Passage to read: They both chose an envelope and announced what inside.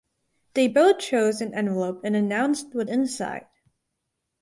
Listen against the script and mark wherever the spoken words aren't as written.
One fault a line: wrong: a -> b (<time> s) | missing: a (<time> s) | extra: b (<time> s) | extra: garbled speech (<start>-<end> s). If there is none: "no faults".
no faults